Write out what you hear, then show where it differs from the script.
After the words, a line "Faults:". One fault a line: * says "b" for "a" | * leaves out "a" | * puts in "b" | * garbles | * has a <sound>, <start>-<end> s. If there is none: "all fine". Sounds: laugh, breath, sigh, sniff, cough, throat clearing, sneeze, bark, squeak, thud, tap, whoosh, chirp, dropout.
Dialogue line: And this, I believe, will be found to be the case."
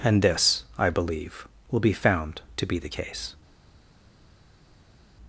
And this, I believe, will be found to be the case."
Faults:
all fine